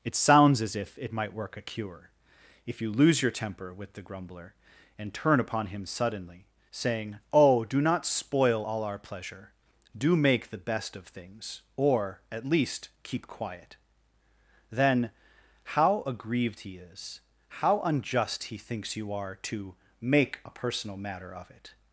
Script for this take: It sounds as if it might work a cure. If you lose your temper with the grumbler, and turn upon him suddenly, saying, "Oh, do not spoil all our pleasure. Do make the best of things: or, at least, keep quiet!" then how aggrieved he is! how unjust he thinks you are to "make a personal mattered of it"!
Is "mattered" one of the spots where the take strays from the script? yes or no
yes